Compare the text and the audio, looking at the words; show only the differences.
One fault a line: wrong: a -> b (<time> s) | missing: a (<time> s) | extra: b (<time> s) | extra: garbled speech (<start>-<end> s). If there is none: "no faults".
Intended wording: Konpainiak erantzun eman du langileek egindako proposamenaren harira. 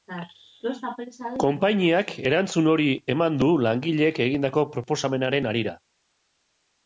extra: hori (2.7 s)